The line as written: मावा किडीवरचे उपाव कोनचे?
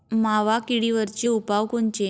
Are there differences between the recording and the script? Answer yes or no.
no